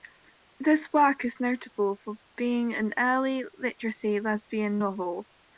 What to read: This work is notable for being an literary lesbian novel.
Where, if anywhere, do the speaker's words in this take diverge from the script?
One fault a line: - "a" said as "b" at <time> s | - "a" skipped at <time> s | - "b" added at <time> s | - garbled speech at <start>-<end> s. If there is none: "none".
- "early" added at 3.0 s